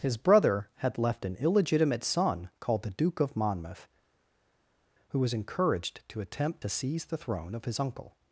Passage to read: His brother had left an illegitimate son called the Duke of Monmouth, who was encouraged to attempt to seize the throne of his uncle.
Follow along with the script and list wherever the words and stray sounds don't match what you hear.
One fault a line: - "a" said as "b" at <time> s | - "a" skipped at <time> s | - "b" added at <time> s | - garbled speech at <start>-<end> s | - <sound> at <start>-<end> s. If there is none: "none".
none